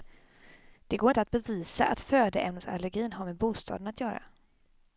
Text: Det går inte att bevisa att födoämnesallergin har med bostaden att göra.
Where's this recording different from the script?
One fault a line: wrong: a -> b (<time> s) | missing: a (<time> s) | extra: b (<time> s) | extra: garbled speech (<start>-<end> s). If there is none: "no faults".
no faults